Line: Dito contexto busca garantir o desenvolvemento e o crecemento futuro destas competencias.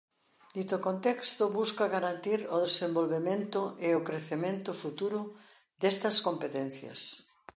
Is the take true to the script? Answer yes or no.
yes